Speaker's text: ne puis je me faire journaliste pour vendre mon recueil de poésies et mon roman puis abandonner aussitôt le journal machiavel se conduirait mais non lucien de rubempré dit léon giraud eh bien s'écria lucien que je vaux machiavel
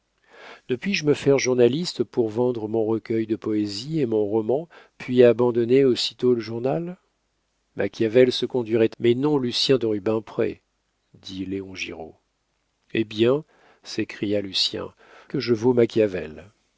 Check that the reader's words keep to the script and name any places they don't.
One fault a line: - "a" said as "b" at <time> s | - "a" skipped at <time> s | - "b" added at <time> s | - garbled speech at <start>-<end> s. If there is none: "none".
none